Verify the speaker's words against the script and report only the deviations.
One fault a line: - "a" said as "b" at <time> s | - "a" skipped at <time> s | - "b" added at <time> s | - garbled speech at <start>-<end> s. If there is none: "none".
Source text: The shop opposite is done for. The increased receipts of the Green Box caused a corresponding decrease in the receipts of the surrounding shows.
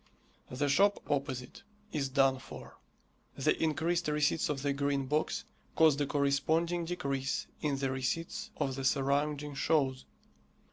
none